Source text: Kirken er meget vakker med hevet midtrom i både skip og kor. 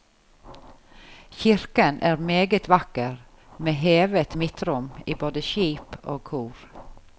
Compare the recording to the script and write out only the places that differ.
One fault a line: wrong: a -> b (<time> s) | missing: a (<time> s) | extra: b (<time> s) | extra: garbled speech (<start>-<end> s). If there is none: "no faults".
no faults